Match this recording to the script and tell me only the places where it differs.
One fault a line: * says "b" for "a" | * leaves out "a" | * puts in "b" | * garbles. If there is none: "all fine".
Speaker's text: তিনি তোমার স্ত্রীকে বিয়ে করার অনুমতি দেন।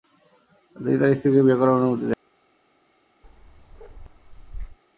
* says "তার" for "তোমার"